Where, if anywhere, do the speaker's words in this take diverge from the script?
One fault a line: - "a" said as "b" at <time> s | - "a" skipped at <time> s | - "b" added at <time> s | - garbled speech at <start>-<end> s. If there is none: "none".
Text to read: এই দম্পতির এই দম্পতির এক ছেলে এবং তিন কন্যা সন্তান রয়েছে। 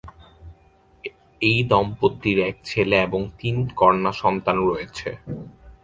- "এই দম্পতির" skipped at 2.4 s